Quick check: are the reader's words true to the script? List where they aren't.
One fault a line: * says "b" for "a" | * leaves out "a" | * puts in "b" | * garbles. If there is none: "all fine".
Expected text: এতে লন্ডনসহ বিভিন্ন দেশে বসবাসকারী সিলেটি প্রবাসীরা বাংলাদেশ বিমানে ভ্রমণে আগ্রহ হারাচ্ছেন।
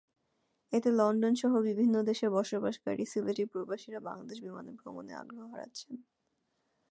all fine